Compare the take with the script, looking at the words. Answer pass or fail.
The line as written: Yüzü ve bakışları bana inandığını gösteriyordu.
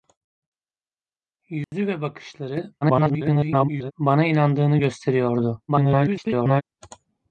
fail